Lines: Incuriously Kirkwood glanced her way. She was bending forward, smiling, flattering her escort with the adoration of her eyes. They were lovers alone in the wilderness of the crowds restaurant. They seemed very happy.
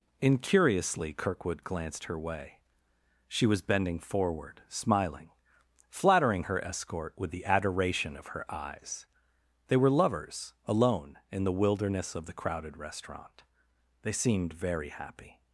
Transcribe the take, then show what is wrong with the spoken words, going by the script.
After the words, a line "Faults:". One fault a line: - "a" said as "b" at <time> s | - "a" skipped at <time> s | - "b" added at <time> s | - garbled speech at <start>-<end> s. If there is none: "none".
Incuriously Kirkwood glanced her way. She was bending forward, smiling, flattering her escort with the adoration of her eyes. They were lovers alone in the wilderness of the crowded restaurant. They seemed very happy.
Faults:
- "crowds" said as "crowded" at 12.3 s